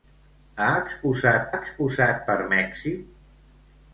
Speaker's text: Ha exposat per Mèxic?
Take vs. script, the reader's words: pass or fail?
fail